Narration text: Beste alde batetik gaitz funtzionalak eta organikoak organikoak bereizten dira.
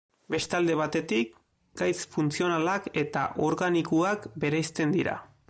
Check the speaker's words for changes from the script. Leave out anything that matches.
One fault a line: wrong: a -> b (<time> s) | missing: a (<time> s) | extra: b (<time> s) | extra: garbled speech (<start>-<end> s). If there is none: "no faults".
missing: organikoak (4.3 s)